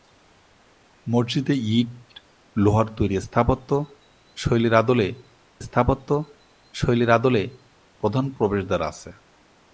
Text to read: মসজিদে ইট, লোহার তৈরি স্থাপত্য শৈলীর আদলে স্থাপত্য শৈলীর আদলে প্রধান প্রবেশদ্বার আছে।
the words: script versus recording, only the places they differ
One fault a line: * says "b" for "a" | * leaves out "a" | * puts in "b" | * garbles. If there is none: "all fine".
all fine